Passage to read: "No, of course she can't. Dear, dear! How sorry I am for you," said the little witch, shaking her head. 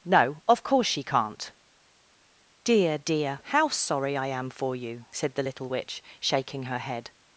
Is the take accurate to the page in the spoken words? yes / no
yes